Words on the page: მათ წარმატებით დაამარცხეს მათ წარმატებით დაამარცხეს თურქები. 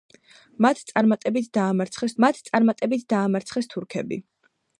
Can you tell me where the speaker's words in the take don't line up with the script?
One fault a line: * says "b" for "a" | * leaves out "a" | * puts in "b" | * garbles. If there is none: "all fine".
all fine